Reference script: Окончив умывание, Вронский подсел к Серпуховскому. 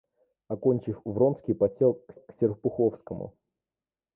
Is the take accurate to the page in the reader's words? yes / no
no